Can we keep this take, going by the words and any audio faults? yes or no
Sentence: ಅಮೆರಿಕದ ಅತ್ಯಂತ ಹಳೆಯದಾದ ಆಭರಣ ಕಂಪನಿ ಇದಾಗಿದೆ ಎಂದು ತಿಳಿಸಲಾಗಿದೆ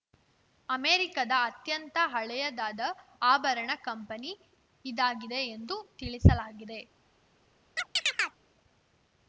no